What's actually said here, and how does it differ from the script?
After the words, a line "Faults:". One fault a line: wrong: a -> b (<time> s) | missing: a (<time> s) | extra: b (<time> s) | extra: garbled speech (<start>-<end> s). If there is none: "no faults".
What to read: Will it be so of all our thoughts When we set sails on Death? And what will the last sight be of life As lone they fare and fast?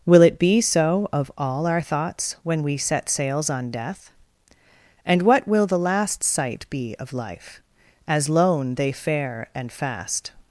Will it be so of all our thoughts When we set sails on Death? And what will the last sight be of life As lone they fare and fast?
Faults:
no faults